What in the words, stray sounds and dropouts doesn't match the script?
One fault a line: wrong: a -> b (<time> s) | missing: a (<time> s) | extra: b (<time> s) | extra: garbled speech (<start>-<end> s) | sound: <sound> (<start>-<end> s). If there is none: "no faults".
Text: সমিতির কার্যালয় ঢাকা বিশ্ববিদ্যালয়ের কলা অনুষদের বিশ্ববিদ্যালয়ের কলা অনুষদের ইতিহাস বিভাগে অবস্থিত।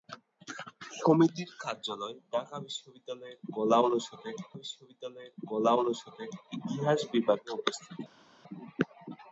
no faults